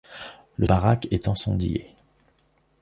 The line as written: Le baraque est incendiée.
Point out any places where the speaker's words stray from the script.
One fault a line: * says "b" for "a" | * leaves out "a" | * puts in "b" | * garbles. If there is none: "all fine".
all fine